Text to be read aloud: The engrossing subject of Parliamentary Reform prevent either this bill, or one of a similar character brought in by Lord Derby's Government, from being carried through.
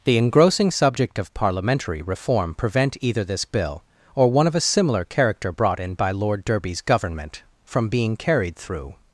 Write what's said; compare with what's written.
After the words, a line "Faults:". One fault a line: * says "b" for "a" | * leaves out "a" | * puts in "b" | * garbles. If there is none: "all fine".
The engrossing subject of Parliamentary Reform prevent either this bill, or one of a similar character brought in by Lord Derby's Government, from being carried through.
Faults:
all fine